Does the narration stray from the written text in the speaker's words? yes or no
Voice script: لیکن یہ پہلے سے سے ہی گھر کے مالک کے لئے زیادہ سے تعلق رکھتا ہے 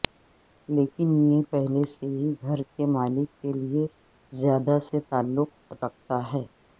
yes